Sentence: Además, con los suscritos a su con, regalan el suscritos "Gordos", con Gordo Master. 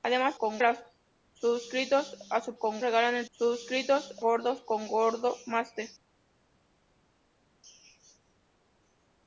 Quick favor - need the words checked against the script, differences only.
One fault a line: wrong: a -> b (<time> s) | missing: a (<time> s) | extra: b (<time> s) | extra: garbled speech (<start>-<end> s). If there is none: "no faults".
no faults